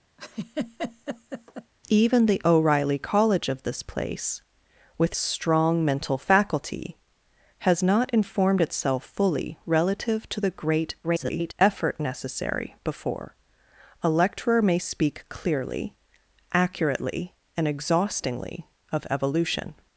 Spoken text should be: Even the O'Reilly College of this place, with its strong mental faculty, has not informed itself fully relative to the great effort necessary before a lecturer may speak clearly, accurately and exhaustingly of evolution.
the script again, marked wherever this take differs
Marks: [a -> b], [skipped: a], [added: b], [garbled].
Even the O'Reilly College of this place, with [skipped: its] strong mental faculty, has not informed itself fully relative to the great [garbled] effort necessary before a lecturer may speak clearly, accurately and exhaustingly of evolution.